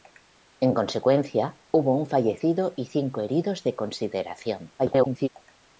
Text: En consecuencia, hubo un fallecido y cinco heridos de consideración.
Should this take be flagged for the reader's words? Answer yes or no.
yes